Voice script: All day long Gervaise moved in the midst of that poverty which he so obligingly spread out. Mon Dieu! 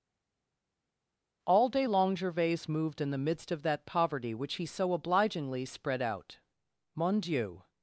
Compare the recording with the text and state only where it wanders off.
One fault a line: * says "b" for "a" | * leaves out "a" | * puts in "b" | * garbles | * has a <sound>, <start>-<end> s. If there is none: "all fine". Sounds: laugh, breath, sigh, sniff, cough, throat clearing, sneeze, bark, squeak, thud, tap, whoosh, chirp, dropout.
all fine